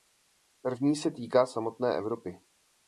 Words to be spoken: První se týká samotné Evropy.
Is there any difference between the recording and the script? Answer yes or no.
no